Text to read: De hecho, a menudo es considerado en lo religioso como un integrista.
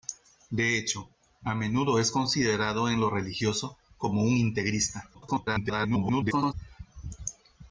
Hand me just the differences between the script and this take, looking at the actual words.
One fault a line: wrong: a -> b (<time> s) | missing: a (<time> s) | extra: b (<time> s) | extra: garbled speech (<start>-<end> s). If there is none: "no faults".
extra: garbled speech (5.1-6.5 s)